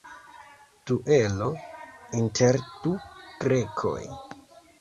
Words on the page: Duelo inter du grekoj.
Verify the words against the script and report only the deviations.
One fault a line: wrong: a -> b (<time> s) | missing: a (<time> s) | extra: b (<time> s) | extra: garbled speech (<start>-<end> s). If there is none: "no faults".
no faults